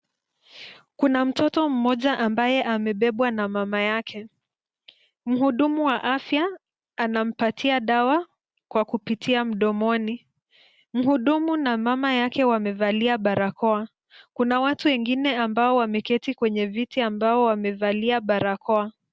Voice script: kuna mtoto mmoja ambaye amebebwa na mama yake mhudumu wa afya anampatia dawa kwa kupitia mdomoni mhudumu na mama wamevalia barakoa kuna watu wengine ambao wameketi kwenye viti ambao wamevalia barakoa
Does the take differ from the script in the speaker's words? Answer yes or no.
yes